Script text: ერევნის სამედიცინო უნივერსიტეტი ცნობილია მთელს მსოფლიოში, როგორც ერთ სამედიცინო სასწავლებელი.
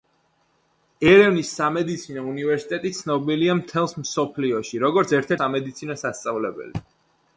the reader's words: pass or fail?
pass